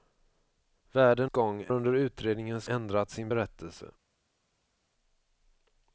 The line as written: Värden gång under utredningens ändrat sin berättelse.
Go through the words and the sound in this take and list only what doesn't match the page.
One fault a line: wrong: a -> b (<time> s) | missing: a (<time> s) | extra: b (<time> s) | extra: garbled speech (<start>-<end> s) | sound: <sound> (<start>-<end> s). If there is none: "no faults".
no faults